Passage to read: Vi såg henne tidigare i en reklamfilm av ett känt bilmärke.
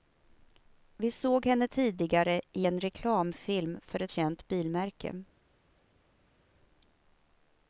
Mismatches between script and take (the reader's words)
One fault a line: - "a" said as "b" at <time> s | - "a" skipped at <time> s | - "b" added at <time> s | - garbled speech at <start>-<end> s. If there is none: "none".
- "av" said as "för" at 3.8 s